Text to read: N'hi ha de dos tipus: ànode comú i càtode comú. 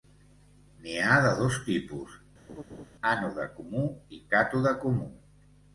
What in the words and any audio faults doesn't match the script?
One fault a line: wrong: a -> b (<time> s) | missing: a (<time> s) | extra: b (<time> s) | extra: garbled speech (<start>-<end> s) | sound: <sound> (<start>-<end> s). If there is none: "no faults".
sound: laugh (2.5-2.9 s)